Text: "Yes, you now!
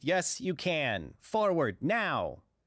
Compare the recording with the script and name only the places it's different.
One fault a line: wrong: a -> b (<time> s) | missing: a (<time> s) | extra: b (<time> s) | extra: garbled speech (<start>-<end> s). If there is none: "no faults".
extra: can Forward (0.5 s)